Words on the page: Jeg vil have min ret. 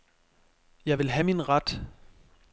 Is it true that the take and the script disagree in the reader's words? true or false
false